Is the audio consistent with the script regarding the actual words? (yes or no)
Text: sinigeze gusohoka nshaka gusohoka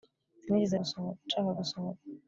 yes